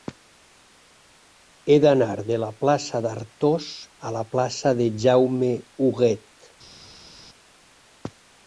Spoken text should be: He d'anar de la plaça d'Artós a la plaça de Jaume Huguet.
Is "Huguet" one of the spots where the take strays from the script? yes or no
no